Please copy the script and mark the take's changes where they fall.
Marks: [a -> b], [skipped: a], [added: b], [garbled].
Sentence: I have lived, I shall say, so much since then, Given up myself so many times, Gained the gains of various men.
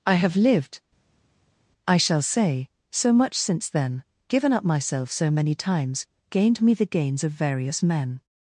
I have lived, I shall say, so much since then, Given up myself so many times, Gained [added: me] the gains of various men.